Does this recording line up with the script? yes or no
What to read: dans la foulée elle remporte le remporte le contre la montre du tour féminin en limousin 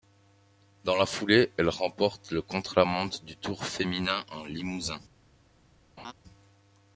no